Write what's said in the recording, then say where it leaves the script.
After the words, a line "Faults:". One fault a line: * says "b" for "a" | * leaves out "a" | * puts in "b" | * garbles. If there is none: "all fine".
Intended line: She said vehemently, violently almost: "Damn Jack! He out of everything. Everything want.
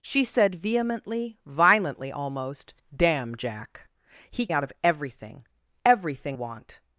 She said vehemently, violently almost: "Damn Jack! He out of everything. Everything want.
Faults:
all fine